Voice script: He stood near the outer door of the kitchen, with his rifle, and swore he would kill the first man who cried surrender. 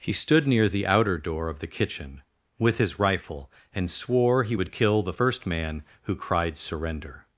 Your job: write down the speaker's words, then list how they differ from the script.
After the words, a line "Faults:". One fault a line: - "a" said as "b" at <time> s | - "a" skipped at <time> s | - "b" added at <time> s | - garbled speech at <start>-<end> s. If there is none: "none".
He stood near the outer door of the kitchen, with his rifle, and swore he would kill the first man who cried surrender.
Faults:
none